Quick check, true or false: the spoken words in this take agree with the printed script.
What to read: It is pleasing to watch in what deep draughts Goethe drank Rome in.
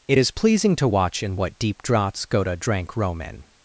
true